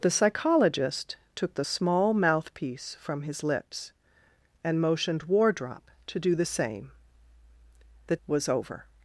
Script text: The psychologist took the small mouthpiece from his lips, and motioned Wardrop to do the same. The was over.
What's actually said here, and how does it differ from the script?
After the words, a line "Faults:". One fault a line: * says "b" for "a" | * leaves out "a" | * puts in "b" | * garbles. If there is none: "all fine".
The psychologist took the small mouthpiece from his lips, and motioned Wardrop to do the same. The was over.
Faults:
all fine